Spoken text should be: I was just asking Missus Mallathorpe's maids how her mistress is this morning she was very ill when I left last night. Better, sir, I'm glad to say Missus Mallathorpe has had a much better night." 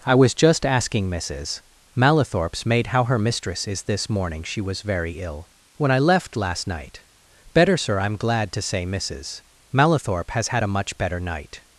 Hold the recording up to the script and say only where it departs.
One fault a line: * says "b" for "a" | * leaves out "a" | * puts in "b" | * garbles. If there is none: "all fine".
* says "maid" for "maids"